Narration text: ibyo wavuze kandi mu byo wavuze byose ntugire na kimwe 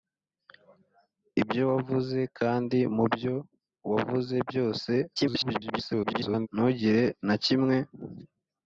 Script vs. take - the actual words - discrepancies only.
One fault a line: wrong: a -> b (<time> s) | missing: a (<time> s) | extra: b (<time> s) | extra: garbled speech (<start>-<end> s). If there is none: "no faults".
extra: garbled speech (5.2-6.5 s)